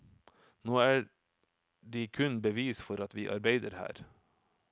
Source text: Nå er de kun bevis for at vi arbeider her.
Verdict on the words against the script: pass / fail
pass